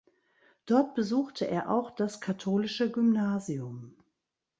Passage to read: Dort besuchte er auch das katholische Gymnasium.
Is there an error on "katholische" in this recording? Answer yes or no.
no